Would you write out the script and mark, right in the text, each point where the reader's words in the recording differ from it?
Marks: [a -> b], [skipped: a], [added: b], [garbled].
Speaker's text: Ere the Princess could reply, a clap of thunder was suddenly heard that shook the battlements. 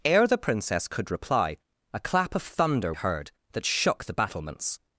Ere the Princess could reply, a clap of thunder [skipped: was suddenly] heard that shook the battlements.